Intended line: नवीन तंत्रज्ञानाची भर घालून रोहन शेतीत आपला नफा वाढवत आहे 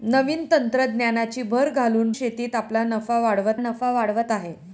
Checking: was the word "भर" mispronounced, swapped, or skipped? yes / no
no